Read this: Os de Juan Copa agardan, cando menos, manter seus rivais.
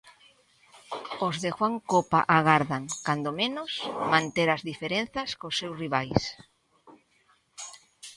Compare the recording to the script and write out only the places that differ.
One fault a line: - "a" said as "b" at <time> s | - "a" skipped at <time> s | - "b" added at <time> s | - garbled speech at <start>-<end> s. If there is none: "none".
- "as diferenzas cos" added at 4.5 s